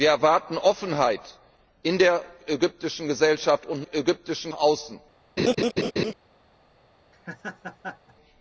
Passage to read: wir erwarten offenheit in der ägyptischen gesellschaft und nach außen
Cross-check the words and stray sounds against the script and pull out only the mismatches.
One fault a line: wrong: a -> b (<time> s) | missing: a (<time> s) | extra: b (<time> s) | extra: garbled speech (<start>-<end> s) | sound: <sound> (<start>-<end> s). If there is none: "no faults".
wrong: nach -> ägyptischen (3.9 s)
sound: laugh (5.4-6.1 s)
sound: laugh (7.1-8.2 s)